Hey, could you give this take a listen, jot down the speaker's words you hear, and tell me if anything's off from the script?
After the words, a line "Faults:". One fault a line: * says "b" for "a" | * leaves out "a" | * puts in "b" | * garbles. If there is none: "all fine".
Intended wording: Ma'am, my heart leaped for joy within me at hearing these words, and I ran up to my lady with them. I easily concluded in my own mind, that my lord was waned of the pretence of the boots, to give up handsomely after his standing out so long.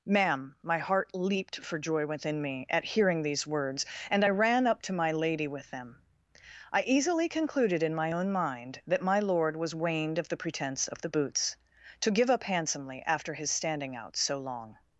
Ma'am, my heart leaped for joy within me at hearing these words, and I ran up to my lady with them. I easily concluded in my own mind, that my lord was waned of the pretence of the boots, to give up handsomely after his standing out so long.
Faults:
all fine